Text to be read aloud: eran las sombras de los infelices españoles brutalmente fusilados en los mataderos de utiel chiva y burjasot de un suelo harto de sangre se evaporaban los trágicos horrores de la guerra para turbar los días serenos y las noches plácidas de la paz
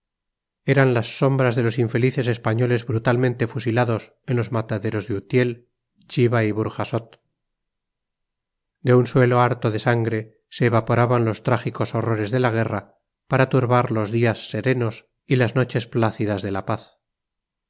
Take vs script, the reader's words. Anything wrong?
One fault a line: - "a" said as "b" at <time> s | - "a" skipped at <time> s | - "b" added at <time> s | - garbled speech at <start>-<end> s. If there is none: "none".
none